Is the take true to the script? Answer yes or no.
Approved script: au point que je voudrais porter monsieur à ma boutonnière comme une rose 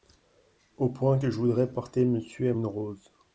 no